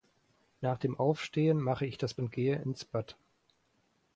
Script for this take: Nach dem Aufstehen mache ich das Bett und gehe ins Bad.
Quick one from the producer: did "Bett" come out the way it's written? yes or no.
no